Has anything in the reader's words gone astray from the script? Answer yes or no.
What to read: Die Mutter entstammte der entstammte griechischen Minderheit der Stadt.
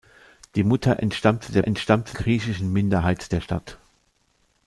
no